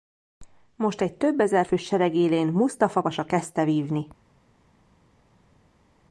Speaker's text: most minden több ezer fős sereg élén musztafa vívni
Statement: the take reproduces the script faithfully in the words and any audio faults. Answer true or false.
false